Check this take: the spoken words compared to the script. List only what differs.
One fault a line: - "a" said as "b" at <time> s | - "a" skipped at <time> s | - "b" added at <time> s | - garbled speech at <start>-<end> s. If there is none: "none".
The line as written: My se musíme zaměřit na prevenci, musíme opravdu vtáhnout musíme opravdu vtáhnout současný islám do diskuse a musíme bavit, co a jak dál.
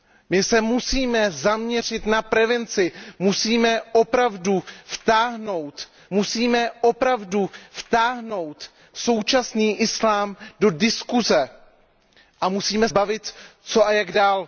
none